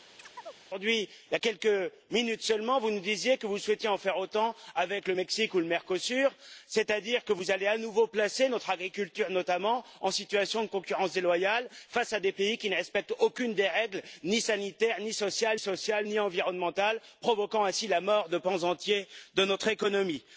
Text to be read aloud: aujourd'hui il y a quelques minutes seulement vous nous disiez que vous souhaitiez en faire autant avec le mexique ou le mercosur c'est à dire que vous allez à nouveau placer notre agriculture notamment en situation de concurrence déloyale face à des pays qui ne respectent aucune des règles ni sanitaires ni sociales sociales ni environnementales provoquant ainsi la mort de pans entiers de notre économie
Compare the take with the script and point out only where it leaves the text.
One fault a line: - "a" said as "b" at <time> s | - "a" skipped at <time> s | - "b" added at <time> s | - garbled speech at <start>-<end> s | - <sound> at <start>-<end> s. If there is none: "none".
- chirp at 0.2-0.6 s